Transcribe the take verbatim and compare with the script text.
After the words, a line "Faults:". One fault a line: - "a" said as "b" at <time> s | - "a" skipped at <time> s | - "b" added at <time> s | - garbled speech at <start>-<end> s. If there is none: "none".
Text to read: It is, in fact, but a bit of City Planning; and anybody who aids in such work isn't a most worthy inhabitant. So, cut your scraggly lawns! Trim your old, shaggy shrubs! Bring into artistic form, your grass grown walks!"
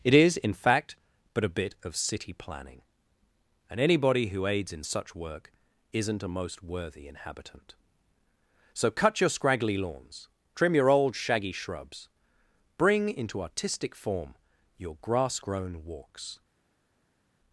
It is, in fact, but a bit of City Planning; and anybody who aids in such work isn't a most worthy inhabitant. So, cut your scraggly lawns! Trim your old, shaggy shrubs! Bring into artistic form, your grass grown walks!"
Faults:
none